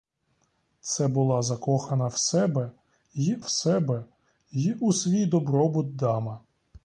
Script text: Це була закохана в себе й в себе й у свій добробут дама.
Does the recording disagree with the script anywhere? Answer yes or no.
no